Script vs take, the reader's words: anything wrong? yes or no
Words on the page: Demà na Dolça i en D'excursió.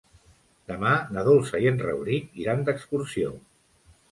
yes